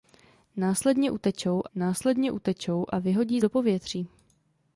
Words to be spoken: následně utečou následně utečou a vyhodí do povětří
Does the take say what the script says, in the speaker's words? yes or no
yes